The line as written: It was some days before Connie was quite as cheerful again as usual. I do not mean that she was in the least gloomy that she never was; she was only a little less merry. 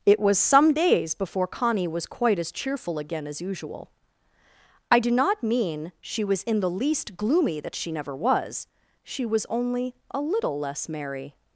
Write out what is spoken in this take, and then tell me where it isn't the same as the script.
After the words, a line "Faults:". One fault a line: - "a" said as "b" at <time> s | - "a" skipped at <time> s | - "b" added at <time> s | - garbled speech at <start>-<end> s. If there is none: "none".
It was some days before Connie was quite as cheerful again as usual. I do not mean she was in the least gloomy that she never was; she was only a little less merry.
Faults:
- "that" skipped at 5.9 s